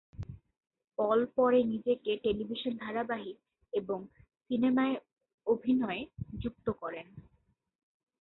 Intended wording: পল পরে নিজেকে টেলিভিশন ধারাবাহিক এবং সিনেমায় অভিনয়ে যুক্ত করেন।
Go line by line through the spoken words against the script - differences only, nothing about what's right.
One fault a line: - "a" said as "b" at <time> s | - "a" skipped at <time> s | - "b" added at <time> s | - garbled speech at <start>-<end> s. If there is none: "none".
none